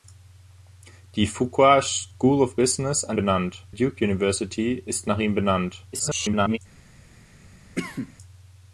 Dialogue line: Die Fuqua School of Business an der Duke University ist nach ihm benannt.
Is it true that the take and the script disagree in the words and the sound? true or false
true